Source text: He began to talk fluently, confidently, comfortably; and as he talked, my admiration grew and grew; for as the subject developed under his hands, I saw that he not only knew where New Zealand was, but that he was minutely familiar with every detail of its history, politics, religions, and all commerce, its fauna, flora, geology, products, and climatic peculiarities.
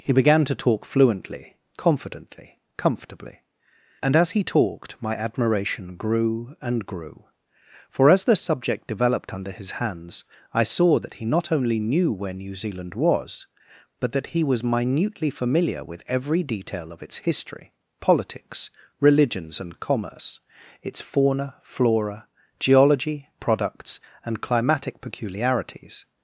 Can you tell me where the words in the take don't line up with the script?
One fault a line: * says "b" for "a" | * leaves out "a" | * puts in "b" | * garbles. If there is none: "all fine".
* leaves out "all"